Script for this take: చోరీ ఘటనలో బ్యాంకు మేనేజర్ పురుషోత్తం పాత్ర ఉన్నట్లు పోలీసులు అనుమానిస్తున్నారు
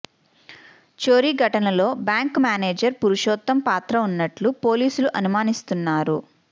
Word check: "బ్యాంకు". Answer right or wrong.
right